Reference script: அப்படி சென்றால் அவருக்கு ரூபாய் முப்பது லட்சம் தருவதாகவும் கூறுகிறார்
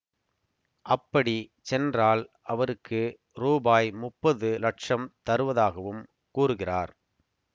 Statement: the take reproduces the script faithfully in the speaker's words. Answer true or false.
true